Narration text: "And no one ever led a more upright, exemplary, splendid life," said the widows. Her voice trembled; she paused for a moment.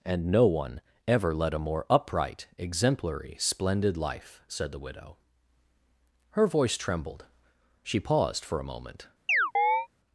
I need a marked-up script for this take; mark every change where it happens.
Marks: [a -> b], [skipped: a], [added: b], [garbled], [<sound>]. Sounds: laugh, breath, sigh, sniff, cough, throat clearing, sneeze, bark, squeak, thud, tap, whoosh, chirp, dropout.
"And no one ever led a more upright, exemplary, splendid life," said the [widows. -> widow] Her voice trembled; she paused for a moment. [chirp]